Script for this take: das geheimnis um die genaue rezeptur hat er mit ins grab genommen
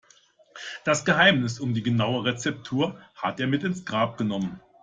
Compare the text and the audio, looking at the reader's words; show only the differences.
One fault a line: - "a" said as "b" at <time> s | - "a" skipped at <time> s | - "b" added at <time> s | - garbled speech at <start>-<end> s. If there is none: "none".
none